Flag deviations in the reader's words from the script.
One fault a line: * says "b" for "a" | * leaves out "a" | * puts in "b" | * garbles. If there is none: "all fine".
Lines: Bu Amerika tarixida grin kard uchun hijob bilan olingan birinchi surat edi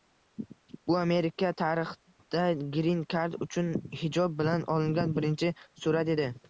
all fine